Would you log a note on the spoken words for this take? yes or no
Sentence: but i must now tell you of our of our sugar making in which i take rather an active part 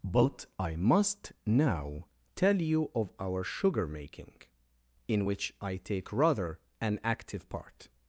yes